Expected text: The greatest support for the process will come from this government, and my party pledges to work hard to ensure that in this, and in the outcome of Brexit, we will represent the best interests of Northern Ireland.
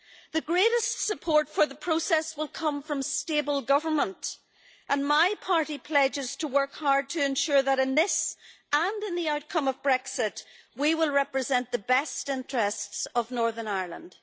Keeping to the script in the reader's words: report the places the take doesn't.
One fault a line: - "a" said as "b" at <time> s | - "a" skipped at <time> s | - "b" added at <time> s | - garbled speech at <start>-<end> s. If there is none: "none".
- "this" said as "stable" at 3.0 s